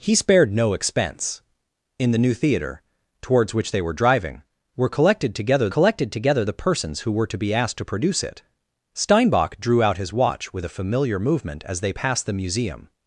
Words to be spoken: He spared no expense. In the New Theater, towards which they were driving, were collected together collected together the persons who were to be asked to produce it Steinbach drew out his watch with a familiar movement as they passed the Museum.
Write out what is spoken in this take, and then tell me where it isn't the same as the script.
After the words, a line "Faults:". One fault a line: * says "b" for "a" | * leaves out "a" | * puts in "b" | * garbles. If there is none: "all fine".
He spared no expense. In the New Theater, towards which they were driving, were collected together collected together the persons who were to be asked to produce it Steinbach drew out his watch with a familiar movement as they passed the Museum.
Faults:
all fine